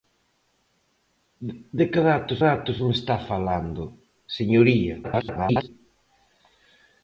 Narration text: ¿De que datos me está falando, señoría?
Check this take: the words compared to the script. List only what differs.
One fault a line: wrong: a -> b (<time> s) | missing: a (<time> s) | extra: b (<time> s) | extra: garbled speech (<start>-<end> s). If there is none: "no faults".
extra: datos (2.5 s)
extra: garbled speech (5.0-5.7 s)